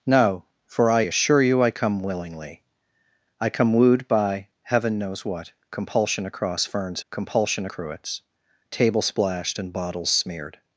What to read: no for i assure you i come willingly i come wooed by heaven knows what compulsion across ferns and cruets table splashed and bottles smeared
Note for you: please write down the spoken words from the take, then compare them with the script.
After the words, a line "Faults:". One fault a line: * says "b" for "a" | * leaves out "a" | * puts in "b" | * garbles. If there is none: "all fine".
no for i assure you i come willingly i come wooed by heaven knows what compulsion across ferns compulsion cruets table splashed and bottles smeared
Faults:
* says "compulsion" for "and"